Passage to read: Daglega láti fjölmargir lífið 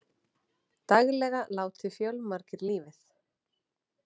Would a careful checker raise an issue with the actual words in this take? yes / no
no